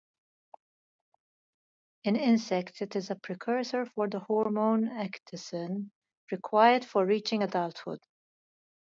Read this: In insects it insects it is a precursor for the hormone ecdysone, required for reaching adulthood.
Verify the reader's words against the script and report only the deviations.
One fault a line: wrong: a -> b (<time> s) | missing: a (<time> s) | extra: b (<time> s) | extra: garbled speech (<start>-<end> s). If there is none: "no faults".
missing: insects it (3.0 s)